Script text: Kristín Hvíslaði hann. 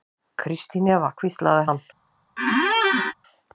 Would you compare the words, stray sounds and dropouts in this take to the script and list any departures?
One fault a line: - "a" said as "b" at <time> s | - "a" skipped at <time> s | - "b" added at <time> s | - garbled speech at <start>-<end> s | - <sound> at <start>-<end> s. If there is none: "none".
- "Eva" added at 0.9 s
- squeak at 2.4-3.1 s